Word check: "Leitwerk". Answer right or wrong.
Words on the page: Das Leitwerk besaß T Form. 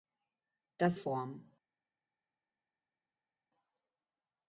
wrong